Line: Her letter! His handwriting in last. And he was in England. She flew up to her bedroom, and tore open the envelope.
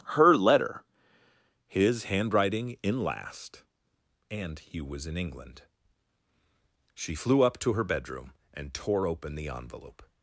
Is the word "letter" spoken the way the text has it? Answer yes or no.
yes